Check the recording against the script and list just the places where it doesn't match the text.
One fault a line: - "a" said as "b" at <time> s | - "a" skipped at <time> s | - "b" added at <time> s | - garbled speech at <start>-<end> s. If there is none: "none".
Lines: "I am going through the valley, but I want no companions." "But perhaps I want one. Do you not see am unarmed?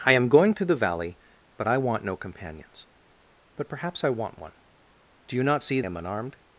none